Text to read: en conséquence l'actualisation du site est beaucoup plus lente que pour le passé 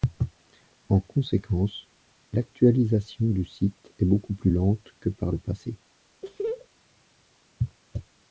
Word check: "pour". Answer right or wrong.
wrong